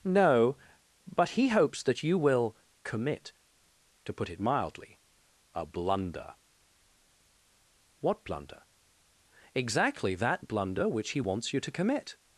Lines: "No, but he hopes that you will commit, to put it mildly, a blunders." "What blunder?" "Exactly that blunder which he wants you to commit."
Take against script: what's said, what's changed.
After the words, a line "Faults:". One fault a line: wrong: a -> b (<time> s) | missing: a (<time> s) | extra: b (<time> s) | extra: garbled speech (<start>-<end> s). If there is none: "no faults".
"No, but he hopes that you will commit, to put it mildly, a blunder." "What blunder?" "Exactly that blunder which he wants you to commit."
Faults:
wrong: blunders -> blunder (5.7 s)